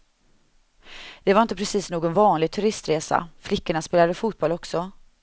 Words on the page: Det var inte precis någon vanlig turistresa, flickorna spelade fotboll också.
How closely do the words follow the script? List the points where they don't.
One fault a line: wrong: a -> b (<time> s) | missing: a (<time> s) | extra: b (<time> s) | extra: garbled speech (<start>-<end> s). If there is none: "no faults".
no faults